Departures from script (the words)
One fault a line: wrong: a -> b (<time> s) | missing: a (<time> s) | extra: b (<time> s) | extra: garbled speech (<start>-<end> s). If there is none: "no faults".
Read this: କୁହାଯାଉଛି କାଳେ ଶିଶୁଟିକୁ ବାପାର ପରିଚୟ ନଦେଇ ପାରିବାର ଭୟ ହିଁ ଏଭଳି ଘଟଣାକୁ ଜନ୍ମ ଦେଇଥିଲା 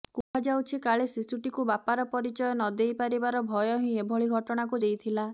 missing: ଜନ୍ମ (4.8 s)